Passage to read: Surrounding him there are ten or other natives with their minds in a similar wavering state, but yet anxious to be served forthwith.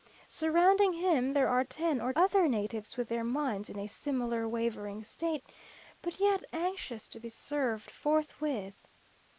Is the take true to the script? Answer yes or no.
yes